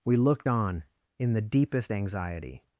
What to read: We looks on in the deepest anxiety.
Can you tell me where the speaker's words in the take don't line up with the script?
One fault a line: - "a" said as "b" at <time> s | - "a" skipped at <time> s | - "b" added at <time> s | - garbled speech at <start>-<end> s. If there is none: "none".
- "looks" said as "looked" at 0.2 s